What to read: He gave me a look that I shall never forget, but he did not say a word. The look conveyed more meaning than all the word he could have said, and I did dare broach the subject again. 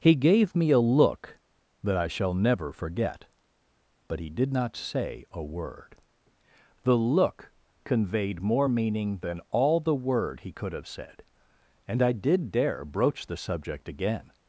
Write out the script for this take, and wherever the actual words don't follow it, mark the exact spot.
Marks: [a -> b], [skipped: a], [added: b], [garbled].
He gave me a look that I shall never forget, but he did not say a word. The look conveyed more meaning than all the word he could have said, and I did dare broach the subject again.